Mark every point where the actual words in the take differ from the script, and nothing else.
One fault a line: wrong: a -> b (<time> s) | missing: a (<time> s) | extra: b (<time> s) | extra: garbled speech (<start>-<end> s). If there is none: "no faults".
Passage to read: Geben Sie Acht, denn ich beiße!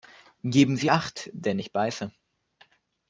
no faults